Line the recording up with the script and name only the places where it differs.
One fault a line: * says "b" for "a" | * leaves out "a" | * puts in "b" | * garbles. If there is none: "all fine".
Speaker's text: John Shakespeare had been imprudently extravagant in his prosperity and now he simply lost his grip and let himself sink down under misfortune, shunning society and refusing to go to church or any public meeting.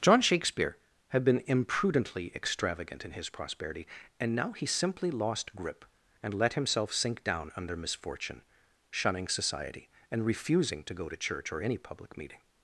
* leaves out "his"